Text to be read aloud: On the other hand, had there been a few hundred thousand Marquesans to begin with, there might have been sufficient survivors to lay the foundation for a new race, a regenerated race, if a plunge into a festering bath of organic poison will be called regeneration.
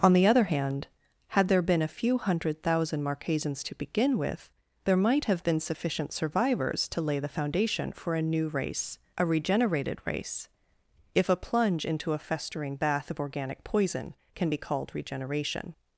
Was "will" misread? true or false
true